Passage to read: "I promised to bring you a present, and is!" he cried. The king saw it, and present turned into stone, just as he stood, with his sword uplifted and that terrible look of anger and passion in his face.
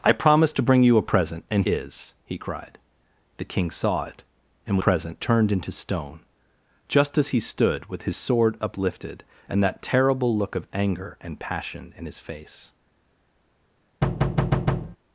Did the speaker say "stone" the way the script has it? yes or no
yes